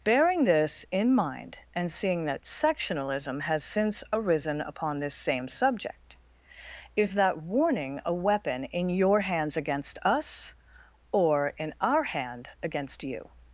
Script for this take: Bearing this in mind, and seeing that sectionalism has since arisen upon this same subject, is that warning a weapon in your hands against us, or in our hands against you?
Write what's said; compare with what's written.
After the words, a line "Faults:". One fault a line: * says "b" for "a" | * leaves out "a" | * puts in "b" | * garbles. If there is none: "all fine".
Bearing this in mind, and seeing that sectionalism has since arisen upon this same subject, is that warning a weapon in your hands against us, or in our hand against you?
Faults:
* says "hand" for "hands"